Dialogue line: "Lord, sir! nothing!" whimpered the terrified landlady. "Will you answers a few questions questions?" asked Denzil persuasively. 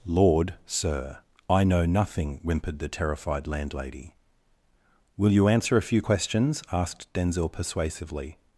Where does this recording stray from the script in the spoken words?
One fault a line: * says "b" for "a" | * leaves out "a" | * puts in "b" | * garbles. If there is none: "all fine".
* puts in "I know"
* says "answer" for "answers"
* leaves out "questions"